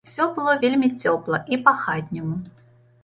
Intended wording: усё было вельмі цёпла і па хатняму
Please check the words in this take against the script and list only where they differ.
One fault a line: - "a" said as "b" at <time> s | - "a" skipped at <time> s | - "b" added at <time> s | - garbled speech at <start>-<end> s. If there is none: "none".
none